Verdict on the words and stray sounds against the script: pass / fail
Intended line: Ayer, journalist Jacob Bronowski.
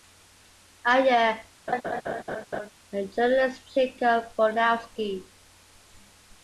fail